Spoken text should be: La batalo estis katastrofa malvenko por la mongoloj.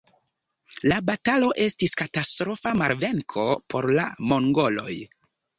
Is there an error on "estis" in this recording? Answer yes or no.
no